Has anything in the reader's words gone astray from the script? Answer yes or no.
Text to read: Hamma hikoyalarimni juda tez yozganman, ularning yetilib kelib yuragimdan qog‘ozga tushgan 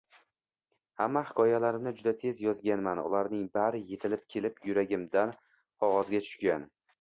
yes